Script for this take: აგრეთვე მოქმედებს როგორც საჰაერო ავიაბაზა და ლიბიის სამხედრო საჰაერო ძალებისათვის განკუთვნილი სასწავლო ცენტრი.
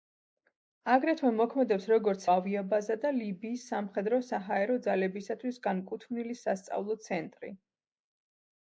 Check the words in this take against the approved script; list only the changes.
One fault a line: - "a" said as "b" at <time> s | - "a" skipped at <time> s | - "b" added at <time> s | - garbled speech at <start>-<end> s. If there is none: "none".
- "საჰაერო" skipped at 2.2 s